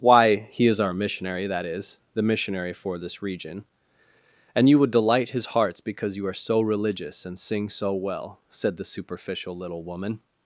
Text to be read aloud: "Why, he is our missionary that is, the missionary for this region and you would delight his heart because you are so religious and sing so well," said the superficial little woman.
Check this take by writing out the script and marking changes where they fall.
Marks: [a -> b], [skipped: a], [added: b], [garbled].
"Why, he is our missionary that is, the missionary for this region and you would delight his [heart -> hearts] because you are so religious and sing so well," said the superficial little woman.